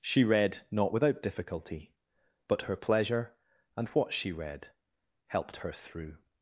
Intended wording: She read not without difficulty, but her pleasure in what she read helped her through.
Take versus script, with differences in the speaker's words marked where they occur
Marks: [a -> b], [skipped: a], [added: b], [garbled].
She read not without difficulty, but her pleasure [in -> and] what she read helped her through.